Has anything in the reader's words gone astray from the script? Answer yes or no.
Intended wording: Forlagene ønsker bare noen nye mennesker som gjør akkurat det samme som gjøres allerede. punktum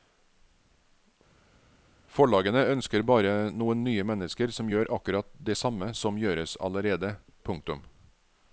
no